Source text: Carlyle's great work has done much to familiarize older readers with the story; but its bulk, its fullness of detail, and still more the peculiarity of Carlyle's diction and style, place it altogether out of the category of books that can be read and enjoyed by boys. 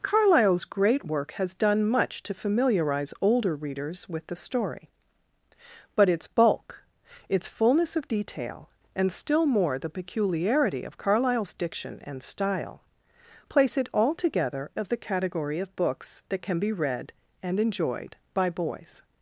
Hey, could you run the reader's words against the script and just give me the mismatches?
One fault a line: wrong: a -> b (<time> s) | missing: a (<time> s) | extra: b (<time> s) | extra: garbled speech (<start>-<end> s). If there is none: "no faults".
missing: out (14.7 s)